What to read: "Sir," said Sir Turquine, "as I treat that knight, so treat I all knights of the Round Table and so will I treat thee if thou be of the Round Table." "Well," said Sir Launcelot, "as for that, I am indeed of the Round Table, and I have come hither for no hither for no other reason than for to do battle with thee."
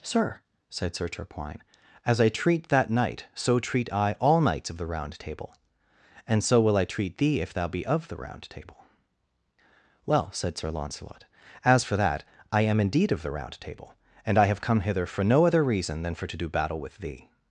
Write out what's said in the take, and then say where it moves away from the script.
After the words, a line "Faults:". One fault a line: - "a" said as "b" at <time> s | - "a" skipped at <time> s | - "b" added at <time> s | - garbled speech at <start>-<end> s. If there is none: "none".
"Sir," said Sir Turquine, "as I treat that knight, so treat I all knights of the Round Table and so will I treat thee if thou be of the Round Table." "Well," said Sir Launcelot, "as for that, I am indeed of the Round Table, and I have come hither for no other reason than for to do battle with thee."
Faults:
- "hither for no" skipped at 15.4 s